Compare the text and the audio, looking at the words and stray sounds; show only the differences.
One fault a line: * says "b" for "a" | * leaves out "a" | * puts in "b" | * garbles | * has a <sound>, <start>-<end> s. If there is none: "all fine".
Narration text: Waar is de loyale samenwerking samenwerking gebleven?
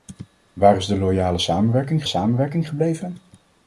all fine